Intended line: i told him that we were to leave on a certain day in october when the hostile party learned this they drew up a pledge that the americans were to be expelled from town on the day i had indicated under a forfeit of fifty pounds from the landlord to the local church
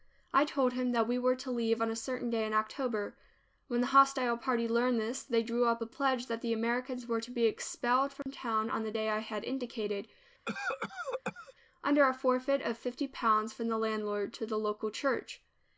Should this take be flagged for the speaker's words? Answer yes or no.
no